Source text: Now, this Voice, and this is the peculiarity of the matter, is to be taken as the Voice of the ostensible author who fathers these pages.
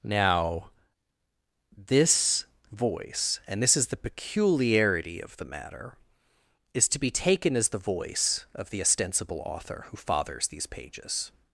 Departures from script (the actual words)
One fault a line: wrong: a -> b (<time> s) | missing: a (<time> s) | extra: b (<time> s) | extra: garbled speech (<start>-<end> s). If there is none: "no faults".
no faults